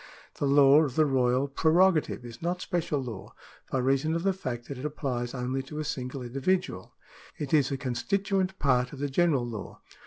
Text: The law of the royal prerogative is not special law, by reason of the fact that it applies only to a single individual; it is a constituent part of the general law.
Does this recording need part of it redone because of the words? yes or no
no